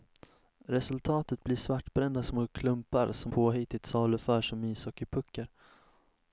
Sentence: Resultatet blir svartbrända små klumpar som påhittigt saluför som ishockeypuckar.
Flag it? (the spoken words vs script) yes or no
no